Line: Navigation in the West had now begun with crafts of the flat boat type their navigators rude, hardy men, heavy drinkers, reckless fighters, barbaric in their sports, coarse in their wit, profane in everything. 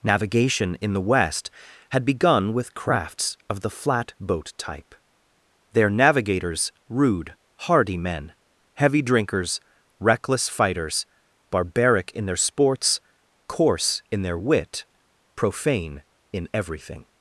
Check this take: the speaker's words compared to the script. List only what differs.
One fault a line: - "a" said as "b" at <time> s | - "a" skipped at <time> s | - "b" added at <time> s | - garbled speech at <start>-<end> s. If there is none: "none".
- "now" skipped at 2.0 s